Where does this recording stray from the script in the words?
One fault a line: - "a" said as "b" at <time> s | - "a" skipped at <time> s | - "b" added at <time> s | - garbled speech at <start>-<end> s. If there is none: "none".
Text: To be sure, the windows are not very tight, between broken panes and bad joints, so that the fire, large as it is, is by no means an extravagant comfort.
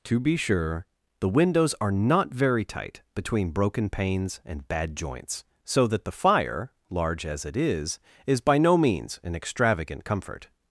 none